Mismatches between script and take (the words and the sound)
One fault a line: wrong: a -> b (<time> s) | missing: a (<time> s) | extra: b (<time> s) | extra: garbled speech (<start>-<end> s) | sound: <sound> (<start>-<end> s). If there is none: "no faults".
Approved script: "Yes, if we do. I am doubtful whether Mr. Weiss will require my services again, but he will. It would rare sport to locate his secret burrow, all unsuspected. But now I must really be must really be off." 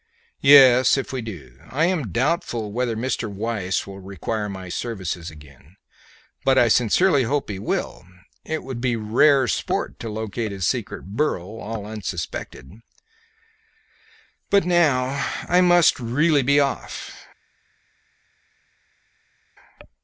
extra: I sincerely hope (6.6 s)
extra: be (8.8 s)
missing: must really be (16.6 s)